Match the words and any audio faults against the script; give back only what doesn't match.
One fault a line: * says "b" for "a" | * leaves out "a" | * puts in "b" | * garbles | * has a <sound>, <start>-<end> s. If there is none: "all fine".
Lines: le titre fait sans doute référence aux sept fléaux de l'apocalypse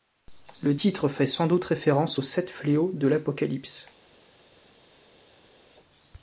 all fine